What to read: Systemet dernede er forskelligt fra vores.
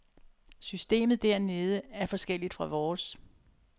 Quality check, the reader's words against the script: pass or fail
pass